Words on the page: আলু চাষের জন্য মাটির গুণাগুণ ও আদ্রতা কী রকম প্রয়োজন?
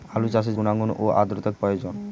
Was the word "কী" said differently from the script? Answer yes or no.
yes